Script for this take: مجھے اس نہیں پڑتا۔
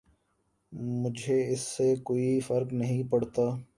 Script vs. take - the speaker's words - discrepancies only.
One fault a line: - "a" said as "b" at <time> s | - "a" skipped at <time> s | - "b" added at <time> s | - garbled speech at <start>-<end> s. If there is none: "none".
- "سے کوئی فرق" added at 1.7 s